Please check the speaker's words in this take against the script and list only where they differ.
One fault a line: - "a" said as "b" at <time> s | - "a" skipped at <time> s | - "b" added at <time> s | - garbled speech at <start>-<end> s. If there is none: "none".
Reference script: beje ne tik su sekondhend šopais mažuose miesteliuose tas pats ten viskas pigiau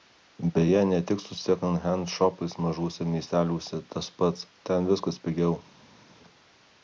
none